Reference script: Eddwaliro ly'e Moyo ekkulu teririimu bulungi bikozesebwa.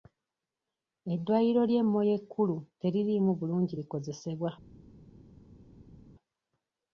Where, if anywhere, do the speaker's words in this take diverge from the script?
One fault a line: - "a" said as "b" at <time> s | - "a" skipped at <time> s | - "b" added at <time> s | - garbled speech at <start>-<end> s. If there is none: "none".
none